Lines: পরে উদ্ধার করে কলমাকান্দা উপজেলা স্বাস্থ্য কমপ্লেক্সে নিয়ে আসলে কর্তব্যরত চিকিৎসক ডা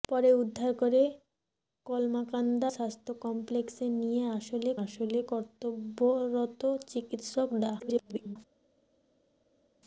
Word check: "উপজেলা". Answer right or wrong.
wrong